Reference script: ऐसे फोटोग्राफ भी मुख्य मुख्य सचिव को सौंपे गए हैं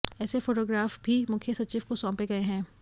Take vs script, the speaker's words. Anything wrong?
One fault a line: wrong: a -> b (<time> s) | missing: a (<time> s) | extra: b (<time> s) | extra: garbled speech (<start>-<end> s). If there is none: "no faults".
missing: मुख्य (1.5 s)